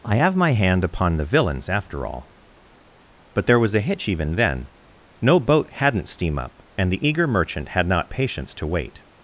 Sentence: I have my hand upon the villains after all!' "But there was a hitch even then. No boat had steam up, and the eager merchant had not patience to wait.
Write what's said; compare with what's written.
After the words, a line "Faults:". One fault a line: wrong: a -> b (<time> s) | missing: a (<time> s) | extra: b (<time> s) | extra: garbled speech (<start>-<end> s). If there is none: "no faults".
I have my hand upon the villains after all!' "But there was a hitch even then. No boat hadn't steam up, and the eager merchant had not patience to wait.
Faults:
wrong: had -> hadn't (5.7 s)